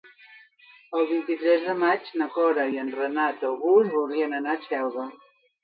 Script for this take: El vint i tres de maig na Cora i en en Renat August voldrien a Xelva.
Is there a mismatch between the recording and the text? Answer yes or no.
yes